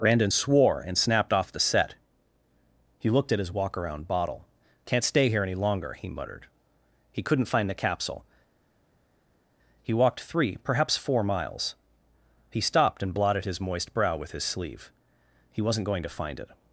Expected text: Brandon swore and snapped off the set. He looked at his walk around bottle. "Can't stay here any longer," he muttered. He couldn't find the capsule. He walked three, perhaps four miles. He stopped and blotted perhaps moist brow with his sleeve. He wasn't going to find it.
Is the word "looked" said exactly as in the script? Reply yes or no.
yes